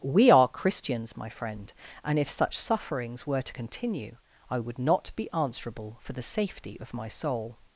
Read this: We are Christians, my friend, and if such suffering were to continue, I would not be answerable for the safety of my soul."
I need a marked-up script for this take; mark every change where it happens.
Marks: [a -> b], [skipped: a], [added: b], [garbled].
We are Christians, my friend, and if such [suffering -> sufferings] were to continue, I would not be answerable for the safety of my soul."